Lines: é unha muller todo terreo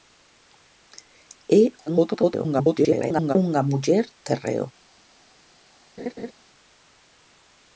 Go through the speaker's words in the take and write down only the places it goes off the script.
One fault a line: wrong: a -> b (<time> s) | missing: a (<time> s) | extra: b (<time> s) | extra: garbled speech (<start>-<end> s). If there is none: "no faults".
extra: garbled speech (1.9-3.4 s)
missing: todo (4.0 s)